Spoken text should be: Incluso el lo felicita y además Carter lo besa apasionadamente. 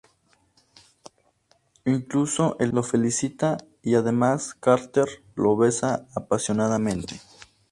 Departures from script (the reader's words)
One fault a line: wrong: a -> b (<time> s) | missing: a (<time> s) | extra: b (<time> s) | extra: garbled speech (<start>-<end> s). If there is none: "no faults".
no faults